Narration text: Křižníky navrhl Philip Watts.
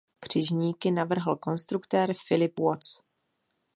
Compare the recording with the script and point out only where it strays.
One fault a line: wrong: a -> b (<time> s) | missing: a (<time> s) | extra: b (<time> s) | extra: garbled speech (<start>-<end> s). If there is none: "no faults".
extra: konstruktér (1.4 s)